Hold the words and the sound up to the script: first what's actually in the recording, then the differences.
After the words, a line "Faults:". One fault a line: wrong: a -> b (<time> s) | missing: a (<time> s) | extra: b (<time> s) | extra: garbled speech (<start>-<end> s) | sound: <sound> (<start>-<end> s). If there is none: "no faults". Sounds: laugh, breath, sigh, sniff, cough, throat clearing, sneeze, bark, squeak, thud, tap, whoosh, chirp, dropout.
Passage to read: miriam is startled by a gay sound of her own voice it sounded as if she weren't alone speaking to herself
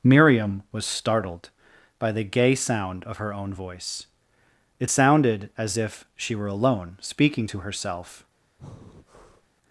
miriam was startled by the gay sound of her own voice it sounded as if she were alone speaking to herself
Faults:
wrong: is -> was (0.7 s)
wrong: a -> the (2.1 s)
wrong: weren't -> were (6.3 s)
sound: breath (8.6-9.5 s)